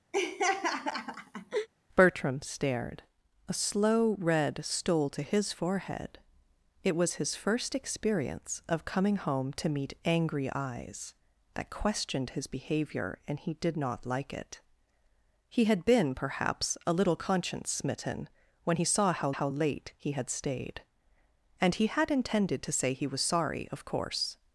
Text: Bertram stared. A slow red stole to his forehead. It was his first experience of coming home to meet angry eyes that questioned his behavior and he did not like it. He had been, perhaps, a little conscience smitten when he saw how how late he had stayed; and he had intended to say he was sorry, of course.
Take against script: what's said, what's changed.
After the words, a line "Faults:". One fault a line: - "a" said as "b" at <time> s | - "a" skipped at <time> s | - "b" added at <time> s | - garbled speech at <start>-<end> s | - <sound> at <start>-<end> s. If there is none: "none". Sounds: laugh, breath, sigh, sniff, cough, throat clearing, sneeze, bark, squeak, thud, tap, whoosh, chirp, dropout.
Bertram stared. A slow red stole to his forehead. It was his first experience of coming home to meet angry eyes that questioned his behavior and he did not like it. He had been, perhaps, a little conscience smitten when he saw how how late he had stayed; and he had intended to say he was sorry, of course.
Faults:
- laugh at 0.1-1.7 s